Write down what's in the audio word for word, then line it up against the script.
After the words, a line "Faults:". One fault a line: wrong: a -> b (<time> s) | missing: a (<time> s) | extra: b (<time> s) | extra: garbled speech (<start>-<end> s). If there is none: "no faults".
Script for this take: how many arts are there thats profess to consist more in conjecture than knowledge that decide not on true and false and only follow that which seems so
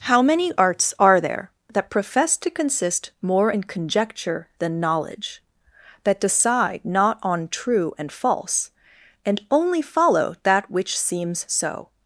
how many arts are there that profess to consist more in conjecture than knowledge that decide not on true and false and only follow that which seems so
Faults:
wrong: thats -> that (1.7 s)